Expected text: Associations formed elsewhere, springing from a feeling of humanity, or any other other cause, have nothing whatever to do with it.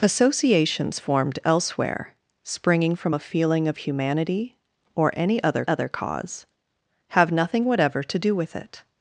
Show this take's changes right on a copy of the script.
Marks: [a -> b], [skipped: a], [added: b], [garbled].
Associations formed elsewhere, springing from a feeling of humanity, or any other other cause, have nothing whatever to do with it.